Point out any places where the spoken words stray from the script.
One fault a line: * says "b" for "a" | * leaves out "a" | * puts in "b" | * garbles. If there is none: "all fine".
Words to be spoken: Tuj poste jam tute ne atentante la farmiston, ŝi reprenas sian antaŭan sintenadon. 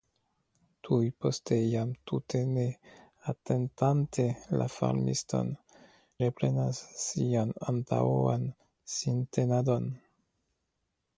* leaves out "ŝi"